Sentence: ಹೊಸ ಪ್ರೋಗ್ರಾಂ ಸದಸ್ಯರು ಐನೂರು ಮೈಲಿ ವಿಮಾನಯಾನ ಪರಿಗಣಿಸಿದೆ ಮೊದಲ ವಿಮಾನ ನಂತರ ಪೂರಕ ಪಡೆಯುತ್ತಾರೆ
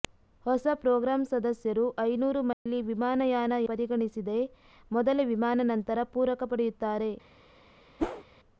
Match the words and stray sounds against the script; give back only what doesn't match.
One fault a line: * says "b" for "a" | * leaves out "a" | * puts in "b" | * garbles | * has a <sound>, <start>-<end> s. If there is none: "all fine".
* has a dropout, 2.5-2.7 s
* has a whoosh, 8.0-8.2 s